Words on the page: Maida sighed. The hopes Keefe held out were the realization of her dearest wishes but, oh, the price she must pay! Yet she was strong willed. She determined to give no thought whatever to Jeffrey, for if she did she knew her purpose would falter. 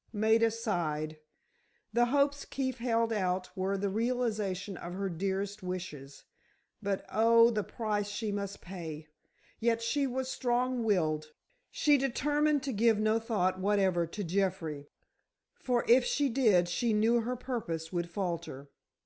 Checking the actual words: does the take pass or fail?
pass